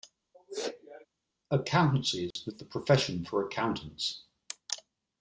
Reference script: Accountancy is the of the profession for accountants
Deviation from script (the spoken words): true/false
false